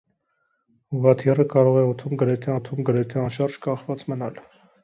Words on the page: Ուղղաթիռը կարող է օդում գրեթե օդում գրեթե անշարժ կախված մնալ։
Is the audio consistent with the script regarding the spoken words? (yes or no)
yes